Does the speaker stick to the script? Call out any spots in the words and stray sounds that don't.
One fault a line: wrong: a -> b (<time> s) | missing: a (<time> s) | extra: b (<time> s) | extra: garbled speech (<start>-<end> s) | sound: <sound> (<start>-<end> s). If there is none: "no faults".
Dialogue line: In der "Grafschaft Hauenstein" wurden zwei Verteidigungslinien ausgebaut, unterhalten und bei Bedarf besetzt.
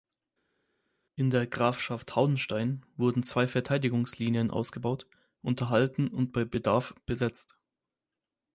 no faults